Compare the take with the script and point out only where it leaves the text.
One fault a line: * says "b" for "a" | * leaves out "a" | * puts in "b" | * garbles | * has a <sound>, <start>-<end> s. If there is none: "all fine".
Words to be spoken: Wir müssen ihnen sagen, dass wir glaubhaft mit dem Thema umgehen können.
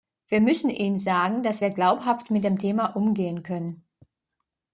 all fine